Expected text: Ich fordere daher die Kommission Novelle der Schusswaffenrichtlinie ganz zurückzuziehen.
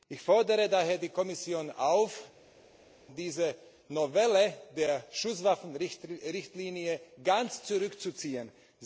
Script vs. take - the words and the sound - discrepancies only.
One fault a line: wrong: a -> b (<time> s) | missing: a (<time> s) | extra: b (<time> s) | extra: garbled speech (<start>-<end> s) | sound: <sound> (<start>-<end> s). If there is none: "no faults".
extra: auf diese (1.7 s)